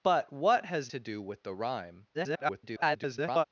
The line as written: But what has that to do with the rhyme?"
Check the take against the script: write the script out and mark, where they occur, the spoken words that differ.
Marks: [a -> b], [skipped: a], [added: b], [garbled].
But what has [skipped: that] to do with the rhyme?" [garbled]